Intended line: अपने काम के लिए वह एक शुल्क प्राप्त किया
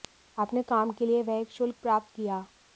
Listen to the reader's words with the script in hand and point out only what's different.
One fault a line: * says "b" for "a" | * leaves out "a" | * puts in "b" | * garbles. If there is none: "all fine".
all fine